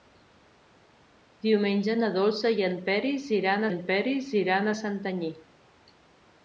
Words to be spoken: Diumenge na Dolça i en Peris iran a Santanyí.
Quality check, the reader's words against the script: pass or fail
fail